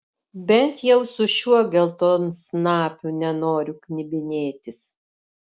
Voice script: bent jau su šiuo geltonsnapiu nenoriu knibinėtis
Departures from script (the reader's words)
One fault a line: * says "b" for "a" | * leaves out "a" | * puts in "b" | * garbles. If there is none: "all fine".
all fine